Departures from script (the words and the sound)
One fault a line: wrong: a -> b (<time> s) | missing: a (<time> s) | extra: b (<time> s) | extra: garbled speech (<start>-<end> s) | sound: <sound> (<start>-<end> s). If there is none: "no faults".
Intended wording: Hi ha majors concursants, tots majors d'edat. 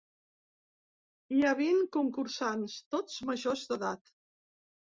wrong: majors -> vint (1.6 s)